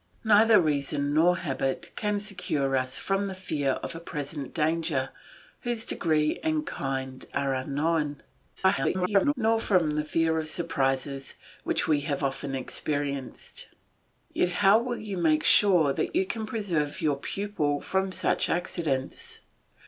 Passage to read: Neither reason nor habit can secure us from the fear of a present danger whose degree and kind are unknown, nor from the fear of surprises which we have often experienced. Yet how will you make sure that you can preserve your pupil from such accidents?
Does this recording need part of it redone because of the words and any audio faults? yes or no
yes